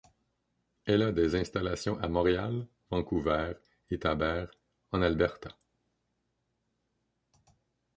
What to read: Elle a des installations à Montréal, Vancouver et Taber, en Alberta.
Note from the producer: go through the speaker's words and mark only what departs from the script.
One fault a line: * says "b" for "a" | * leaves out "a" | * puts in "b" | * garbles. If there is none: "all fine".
all fine